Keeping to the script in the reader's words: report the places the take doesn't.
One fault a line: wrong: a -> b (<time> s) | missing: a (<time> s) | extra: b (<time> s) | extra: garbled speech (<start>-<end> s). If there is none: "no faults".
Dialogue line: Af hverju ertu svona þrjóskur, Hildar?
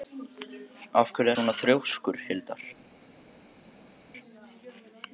missing: ertu (1.3 s)